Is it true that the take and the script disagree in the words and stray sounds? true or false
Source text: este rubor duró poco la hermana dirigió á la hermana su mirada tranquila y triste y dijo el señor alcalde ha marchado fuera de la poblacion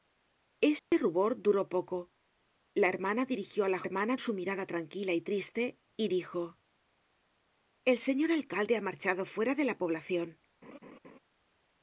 true